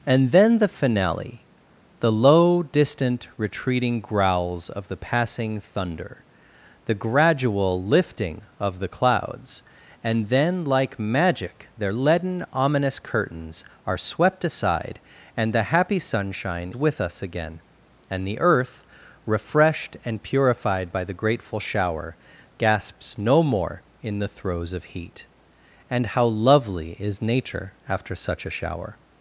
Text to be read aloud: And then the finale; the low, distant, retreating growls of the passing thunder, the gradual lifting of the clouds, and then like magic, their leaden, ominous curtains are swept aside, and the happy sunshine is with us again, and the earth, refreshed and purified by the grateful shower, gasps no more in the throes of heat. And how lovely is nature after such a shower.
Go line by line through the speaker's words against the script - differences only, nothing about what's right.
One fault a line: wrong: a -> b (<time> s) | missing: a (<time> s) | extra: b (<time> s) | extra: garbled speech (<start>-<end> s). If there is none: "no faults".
missing: is (16.7 s)